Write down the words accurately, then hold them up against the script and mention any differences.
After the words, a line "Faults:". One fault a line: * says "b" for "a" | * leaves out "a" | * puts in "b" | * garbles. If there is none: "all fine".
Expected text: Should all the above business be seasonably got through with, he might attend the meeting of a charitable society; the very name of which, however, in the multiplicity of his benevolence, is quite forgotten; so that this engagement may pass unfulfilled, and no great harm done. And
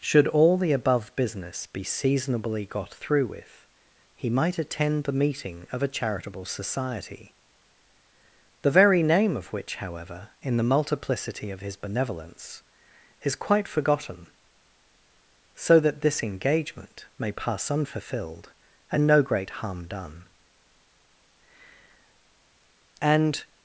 Should all the above business be seasonably got through with, he might attend the meeting of a charitable society; the very name of which, however, in the multiplicity of his benevolence, is quite forgotten; so that this engagement may pass unfulfilled, and no great harm done. And
Faults:
all fine